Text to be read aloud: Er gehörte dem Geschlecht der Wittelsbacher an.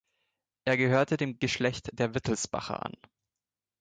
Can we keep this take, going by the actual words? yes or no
yes